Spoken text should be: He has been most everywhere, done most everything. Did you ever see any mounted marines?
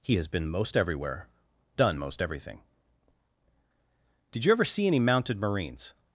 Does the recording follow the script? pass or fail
pass